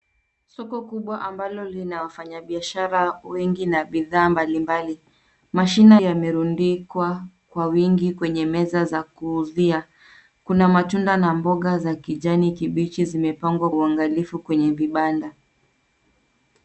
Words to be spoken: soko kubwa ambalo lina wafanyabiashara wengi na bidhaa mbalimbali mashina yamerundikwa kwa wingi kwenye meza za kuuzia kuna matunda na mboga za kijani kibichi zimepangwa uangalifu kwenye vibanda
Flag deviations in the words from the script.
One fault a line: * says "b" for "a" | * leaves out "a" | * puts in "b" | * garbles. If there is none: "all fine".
all fine